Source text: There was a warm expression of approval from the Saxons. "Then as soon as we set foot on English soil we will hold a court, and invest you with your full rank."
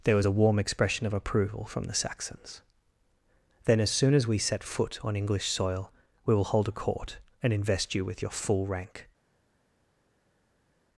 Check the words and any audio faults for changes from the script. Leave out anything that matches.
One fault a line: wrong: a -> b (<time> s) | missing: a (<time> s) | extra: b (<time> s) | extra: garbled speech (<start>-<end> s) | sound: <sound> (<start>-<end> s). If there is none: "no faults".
no faults